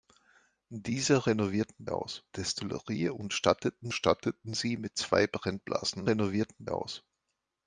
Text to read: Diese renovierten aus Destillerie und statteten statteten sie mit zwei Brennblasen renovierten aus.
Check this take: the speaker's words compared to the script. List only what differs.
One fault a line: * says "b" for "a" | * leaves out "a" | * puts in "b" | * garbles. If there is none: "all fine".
all fine